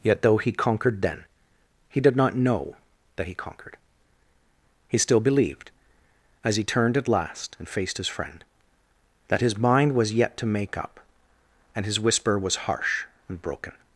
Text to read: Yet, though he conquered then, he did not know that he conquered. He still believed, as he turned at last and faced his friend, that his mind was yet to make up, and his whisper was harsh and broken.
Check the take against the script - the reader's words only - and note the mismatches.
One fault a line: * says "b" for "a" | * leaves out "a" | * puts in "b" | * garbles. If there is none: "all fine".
all fine